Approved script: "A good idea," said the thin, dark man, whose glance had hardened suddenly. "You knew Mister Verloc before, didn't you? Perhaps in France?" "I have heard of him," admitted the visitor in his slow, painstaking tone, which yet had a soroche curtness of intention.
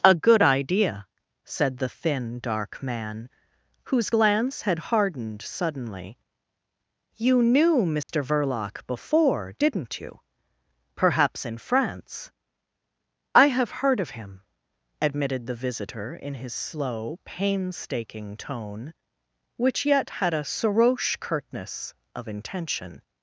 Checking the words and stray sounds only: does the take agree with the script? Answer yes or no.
no